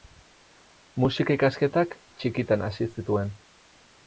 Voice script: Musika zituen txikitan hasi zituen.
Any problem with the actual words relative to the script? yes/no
yes